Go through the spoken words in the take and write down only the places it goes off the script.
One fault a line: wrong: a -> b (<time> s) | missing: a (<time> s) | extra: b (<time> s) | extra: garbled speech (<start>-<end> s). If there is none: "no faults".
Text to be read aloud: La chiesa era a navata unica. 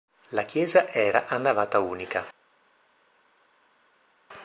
no faults